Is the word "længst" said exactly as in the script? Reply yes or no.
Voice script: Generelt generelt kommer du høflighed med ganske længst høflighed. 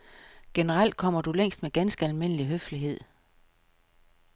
no